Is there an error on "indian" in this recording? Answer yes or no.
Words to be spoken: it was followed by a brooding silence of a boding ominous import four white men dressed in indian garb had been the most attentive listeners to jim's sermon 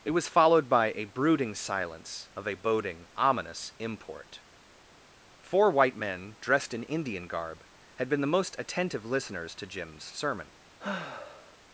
no